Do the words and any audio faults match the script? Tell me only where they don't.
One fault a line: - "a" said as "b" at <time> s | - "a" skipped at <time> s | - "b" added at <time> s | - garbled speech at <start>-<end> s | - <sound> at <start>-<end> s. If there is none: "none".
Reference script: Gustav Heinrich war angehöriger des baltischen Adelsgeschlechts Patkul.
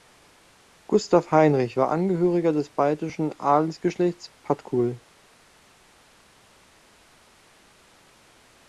none